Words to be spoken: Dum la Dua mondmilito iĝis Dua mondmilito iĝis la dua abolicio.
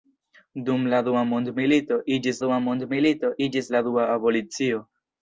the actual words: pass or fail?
pass